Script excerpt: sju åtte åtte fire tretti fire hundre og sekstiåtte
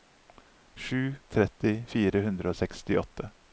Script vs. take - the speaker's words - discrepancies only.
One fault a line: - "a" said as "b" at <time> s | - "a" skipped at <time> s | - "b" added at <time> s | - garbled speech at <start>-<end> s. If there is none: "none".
- "åtte åtte fire" skipped at 1.1 s